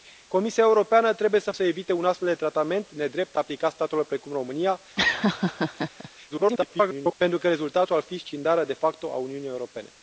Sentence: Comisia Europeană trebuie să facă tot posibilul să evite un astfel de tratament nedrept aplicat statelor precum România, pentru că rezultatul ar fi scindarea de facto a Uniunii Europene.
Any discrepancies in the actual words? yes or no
yes